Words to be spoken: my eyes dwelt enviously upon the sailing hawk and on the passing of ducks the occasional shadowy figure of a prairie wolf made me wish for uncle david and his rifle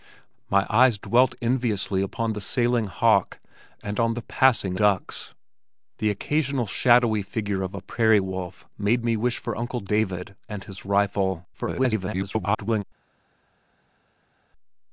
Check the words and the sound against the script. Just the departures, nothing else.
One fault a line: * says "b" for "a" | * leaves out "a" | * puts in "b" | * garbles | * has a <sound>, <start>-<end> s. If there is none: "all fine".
* leaves out "of"
* garbles